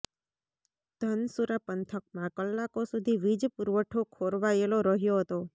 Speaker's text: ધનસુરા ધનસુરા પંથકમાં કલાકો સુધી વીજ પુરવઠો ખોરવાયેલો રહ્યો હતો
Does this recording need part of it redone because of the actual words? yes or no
yes